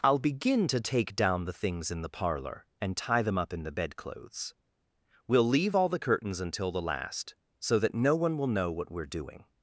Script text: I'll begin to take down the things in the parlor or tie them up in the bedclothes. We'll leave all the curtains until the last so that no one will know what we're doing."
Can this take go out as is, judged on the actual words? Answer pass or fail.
fail